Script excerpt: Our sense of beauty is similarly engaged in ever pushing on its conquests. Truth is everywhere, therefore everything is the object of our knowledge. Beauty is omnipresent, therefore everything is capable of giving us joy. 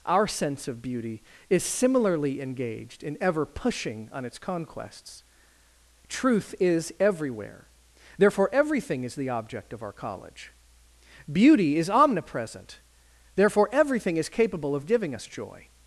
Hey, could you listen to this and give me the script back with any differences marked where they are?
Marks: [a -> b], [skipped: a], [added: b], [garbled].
Our sense of beauty is similarly engaged in ever pushing on its conquests. Truth is everywhere, therefore everything is the object of our [knowledge. -> college] Beauty is omnipresent, therefore everything is capable of giving us joy.